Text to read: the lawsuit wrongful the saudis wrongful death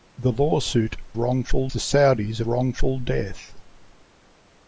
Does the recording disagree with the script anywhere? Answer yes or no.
no